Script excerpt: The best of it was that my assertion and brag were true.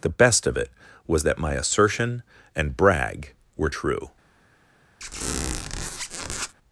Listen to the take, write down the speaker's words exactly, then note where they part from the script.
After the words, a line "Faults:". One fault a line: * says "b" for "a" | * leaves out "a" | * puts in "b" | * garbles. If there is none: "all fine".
The best of it was that my assertion and brag were true.
Faults:
all fine